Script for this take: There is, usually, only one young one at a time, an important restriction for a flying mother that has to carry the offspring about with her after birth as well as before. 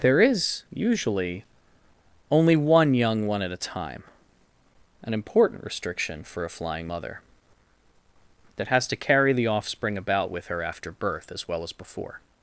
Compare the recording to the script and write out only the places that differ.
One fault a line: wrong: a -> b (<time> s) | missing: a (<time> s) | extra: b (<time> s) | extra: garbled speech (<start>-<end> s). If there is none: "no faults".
no faults